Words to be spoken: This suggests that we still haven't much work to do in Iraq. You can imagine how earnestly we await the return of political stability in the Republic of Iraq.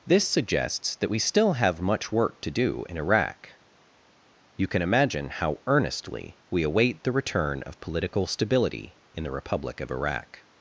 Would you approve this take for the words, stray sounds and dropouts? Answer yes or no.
no